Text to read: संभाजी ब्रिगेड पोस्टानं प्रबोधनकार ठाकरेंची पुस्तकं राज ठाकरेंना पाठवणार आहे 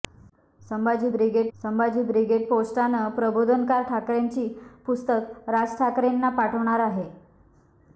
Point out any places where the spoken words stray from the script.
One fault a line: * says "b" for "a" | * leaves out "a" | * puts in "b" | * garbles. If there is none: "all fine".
* puts in "संभाजी ब्रिगेड"